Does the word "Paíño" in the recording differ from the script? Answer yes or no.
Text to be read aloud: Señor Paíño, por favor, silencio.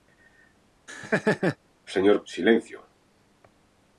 yes